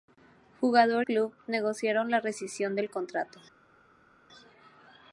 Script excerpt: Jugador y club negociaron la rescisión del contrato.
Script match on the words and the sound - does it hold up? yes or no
no